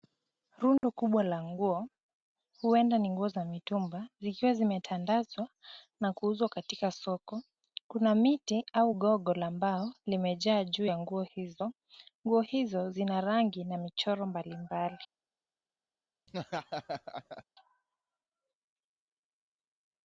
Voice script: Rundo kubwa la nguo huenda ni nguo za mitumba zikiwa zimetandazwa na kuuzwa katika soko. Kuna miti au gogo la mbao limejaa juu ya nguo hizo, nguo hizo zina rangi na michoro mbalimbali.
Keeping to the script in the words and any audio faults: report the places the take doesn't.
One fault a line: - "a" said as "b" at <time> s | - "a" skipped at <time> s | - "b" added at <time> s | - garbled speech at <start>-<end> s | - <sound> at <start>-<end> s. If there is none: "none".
- dropout at 0.8-0.8 s
- laugh at 16.3-17.4 s